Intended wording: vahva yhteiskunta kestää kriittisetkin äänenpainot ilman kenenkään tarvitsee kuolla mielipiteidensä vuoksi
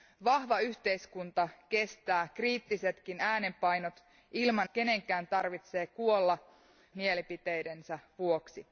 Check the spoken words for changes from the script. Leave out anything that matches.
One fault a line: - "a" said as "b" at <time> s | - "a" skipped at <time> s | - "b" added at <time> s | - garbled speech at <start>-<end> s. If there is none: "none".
none